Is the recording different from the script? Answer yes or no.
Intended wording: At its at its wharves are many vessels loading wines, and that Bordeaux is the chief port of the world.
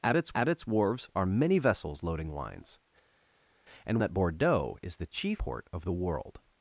no